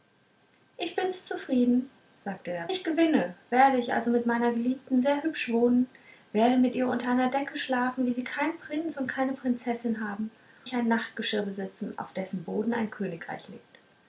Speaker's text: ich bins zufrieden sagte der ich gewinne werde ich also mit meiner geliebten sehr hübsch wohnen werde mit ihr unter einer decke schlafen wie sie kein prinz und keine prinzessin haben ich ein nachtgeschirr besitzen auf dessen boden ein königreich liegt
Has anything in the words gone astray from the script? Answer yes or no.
no